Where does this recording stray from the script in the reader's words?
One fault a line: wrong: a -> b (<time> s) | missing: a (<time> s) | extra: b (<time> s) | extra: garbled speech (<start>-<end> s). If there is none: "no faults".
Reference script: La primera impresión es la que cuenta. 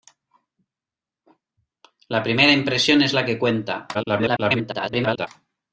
extra: garbled speech (3.9-5.3 s)